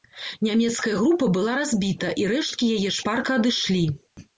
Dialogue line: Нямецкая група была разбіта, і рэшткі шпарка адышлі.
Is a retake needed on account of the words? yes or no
yes